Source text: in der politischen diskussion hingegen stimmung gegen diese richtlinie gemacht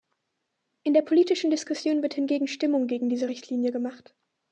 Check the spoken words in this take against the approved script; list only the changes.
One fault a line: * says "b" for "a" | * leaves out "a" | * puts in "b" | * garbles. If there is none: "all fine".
* puts in "wird"